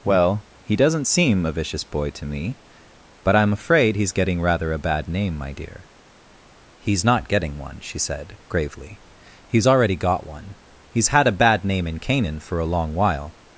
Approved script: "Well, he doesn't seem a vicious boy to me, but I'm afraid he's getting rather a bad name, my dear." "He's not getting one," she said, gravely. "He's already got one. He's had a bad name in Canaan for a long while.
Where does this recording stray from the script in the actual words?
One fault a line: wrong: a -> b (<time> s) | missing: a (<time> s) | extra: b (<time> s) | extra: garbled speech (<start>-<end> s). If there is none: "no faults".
no faults